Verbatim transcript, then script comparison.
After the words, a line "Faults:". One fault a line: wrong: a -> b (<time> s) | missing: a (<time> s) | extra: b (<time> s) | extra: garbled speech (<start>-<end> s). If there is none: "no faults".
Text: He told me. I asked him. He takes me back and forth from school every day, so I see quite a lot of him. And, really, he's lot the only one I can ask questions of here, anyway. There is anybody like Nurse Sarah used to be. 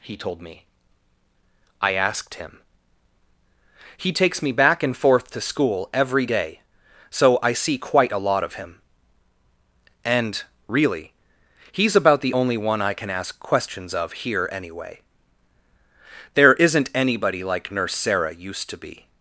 He told me. I asked him. He takes me back and forth to school every day, so I see quite a lot of him. And, really, he's about the only one I can ask questions of here, anyway. There isn't anybody like Nurse Sarah used to be.
Faults:
wrong: from -> to (5.3 s)
wrong: lot -> about (12.0 s)
wrong: is -> isn't (16.5 s)